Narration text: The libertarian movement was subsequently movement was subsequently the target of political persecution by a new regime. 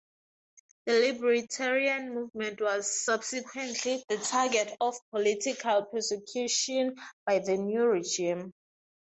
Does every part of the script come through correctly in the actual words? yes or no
no